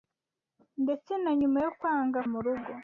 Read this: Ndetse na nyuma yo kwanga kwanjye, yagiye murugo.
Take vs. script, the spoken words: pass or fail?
fail